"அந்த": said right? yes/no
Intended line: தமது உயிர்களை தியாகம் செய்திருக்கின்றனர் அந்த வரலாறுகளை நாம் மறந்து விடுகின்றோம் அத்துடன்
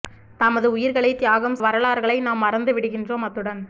no